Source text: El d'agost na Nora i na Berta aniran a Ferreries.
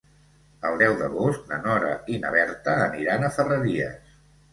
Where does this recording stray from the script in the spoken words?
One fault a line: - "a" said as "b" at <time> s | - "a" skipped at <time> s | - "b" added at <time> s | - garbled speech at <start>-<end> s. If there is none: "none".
- "deu" added at 0.8 s